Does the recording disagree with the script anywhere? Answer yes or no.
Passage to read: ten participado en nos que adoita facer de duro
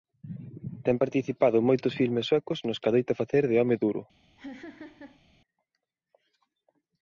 yes